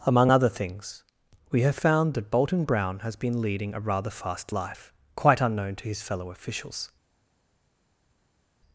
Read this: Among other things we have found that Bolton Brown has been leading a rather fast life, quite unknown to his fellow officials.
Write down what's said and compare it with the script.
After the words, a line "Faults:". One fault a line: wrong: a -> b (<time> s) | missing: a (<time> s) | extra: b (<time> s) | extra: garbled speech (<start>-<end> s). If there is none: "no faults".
Among other things we have found that Bolton Brown has been leading a rather fast life, quite unknown to his fellow officials.
Faults:
no faults